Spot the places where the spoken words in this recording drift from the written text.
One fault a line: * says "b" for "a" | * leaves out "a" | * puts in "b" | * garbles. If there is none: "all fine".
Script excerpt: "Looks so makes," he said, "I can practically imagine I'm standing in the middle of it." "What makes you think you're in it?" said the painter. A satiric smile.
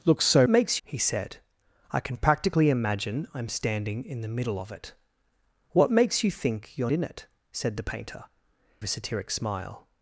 all fine